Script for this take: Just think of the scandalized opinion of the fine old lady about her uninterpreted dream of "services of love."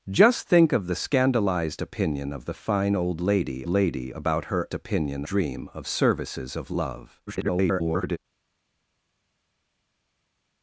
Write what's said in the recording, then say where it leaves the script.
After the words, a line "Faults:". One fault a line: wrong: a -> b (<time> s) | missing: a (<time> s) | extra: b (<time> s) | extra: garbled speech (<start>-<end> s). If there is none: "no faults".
Just think of the scandalized opinion of the fine old lady lady about her opinion dream of "services of love." [garbled]
Faults:
extra: lady (3.7 s)
wrong: uninterpreted -> opinion (4.7 s)
extra: garbled speech (7.3-8.2 s)